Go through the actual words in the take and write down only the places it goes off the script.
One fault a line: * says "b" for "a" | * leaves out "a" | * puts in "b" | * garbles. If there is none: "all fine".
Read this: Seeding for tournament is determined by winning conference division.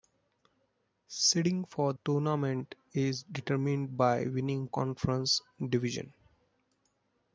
all fine